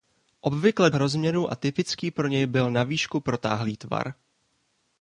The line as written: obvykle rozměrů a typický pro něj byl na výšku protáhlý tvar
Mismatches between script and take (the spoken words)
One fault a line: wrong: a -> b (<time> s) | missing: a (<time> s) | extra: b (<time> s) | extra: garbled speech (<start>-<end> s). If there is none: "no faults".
no faults